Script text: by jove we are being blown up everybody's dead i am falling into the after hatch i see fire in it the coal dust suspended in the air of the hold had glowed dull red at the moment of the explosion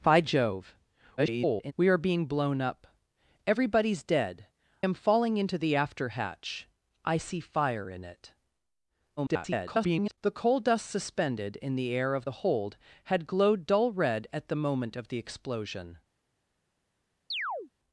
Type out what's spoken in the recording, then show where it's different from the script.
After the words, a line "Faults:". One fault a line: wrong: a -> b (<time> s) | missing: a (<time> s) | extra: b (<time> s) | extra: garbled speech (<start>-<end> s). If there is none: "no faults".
by jove [garbled] we are being blown up everybody's dead am falling into the after hatch i see fire in it [garbled] the coal dust suspended in the air of the hold had glowed dull red at the moment of the explosion
Faults:
extra: garbled speech (1.2-1.7 s)
missing: i (4.5 s)
extra: garbled speech (9.2-10.2 s)